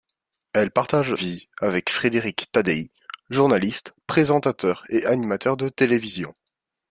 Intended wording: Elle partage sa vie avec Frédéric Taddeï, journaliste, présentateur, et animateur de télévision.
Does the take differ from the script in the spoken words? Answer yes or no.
yes